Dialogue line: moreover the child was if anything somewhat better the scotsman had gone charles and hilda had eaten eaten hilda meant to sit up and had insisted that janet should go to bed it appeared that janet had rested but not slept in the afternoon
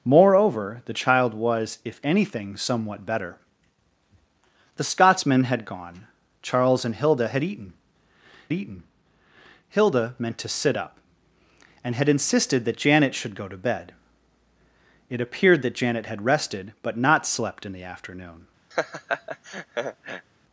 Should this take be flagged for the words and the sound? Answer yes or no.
yes